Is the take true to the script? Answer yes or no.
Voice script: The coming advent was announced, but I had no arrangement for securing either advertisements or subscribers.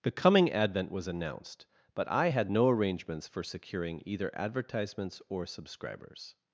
no